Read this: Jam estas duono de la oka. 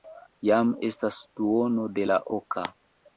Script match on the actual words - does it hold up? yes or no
yes